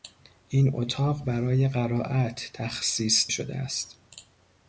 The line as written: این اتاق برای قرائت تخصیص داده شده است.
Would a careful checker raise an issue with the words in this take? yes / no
yes